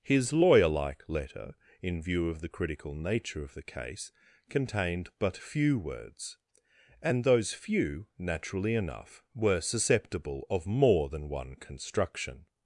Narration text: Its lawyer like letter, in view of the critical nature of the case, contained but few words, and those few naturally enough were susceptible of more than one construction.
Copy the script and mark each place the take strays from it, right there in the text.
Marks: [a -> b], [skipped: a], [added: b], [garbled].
[Its -> His] lawyer like letter, in view of the critical nature of the case, contained but few words, and those few naturally enough were susceptible of more than one construction.